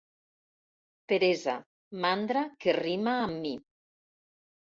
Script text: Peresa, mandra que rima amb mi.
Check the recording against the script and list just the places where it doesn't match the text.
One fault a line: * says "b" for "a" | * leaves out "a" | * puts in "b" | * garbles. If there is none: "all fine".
all fine